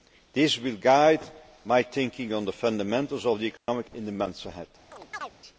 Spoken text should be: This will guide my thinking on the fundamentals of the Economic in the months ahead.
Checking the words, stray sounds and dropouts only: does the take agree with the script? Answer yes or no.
no